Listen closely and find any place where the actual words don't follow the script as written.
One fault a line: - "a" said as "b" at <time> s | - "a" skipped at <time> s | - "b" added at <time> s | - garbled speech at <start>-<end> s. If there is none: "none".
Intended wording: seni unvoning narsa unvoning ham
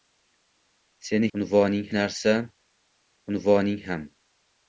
none